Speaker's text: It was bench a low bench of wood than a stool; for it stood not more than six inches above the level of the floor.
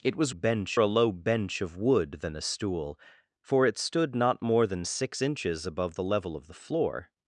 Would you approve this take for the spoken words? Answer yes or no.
yes